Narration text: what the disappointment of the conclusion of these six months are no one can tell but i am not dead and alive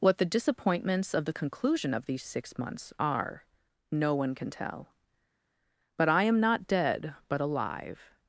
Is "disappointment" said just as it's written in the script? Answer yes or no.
no